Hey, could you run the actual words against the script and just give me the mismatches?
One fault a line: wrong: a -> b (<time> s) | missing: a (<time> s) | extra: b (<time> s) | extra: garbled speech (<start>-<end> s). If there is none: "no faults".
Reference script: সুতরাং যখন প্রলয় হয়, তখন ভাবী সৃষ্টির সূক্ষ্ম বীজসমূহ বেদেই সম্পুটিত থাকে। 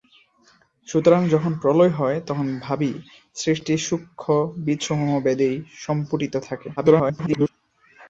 extra: garbled speech (6.8-7.5 s)